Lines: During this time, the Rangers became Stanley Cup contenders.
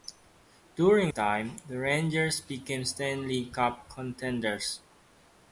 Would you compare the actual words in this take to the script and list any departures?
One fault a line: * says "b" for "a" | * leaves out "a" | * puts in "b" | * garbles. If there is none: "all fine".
* leaves out "this"